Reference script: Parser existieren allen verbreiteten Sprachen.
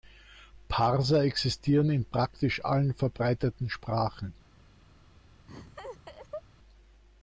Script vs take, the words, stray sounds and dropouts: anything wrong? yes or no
yes